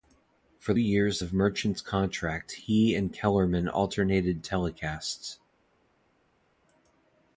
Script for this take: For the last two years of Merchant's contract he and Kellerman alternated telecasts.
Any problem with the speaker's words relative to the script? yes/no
yes